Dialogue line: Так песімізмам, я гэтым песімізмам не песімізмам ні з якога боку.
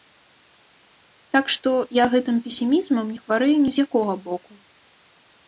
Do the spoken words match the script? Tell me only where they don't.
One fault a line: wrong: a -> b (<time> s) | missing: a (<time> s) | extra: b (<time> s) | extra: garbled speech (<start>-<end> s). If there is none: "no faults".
wrong: песімізмам -> што (1.6 s)
wrong: песімізмам -> хварэю (3.3 s)